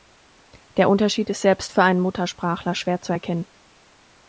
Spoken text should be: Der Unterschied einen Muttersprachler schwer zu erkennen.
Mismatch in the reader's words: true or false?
true